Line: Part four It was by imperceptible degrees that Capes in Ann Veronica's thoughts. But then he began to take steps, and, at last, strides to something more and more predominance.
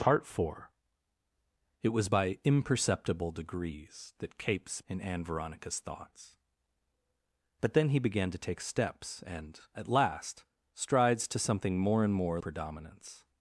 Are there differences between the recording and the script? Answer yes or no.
no